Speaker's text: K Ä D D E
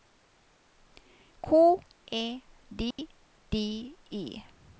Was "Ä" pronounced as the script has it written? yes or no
yes